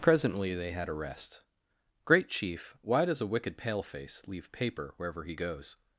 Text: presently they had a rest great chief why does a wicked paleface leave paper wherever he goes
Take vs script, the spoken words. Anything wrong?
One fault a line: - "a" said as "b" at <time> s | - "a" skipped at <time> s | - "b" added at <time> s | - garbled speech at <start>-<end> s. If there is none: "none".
none